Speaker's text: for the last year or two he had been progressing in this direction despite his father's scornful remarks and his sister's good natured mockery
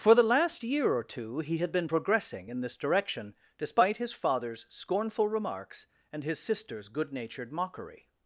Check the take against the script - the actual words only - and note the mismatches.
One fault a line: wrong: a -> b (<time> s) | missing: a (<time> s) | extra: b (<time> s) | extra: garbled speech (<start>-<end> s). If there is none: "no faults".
no faults